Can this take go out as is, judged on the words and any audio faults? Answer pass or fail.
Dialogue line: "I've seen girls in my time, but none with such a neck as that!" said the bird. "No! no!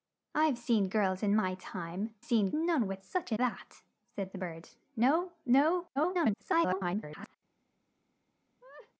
fail